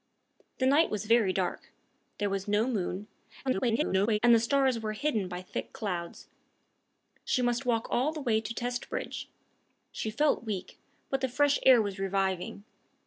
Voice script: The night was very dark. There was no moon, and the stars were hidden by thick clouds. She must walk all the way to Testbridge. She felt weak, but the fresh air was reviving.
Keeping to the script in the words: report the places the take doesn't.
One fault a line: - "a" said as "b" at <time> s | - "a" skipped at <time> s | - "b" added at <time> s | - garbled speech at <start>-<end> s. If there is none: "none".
- garbled speech at 3.4-4.2 s